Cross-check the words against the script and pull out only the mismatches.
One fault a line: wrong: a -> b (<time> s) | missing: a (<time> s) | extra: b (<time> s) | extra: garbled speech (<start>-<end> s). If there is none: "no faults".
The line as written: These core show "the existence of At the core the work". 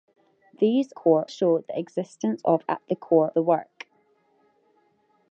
no faults